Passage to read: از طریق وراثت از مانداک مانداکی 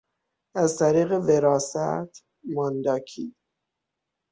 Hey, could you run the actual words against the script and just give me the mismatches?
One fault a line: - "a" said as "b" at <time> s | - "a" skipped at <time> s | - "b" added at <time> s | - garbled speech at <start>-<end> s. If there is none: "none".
- "از مانداک" skipped at 2.2 s